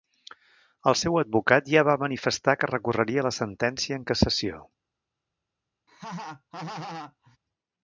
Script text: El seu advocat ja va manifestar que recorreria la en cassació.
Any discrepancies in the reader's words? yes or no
yes